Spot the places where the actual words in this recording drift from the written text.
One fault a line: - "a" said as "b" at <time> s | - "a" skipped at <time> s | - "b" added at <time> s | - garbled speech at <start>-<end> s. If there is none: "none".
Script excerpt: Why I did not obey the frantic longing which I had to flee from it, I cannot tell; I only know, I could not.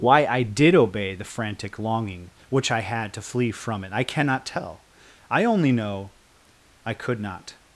- "not" skipped at 0.7 s